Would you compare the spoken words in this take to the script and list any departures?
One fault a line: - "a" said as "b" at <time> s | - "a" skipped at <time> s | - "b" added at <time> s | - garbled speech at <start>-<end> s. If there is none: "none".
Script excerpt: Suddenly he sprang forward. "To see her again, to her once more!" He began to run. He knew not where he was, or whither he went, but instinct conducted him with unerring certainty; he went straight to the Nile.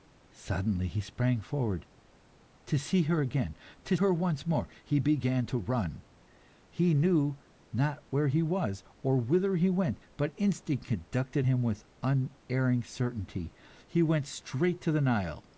none